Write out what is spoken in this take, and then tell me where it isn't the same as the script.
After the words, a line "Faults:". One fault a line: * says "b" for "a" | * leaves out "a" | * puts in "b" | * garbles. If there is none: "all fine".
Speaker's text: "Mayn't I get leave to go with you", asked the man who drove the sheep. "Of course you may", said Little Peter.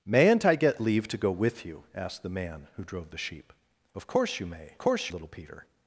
"Mayn't I get leave to go with you", asked the man who drove the sheep. "Of course you may", course Little Peter.
Faults:
* says "course" for "said"